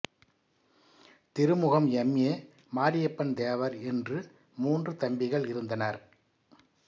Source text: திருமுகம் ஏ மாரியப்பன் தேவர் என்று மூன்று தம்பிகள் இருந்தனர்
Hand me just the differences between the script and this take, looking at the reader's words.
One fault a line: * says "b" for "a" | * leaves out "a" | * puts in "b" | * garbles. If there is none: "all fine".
* puts in "எம்"